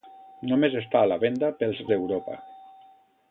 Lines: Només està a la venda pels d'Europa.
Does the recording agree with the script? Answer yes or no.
yes